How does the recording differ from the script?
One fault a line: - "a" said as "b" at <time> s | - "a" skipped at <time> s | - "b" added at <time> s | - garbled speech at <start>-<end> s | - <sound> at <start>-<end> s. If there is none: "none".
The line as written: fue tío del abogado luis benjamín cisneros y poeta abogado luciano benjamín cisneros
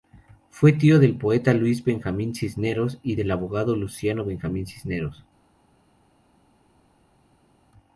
- "abogado" said as "poeta" at 1.1 s
- "poeta" said as "del" at 3.1 s